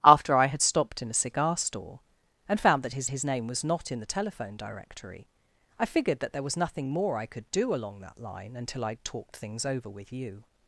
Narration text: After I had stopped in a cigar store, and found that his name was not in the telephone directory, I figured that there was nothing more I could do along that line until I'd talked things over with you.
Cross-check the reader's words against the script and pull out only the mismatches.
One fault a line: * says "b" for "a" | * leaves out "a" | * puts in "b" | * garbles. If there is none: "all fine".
* puts in "his"